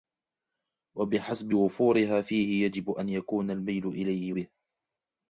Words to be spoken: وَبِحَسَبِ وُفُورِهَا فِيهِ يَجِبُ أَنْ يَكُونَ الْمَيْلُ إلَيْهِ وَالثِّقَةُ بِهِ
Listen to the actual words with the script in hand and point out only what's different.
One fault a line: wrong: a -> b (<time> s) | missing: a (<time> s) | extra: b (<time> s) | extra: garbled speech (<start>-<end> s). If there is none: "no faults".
missing: وَالثِّقَةُ (4.3 s)